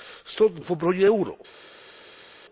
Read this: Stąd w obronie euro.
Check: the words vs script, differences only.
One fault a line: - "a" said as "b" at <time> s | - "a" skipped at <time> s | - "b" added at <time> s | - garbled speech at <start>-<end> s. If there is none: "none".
none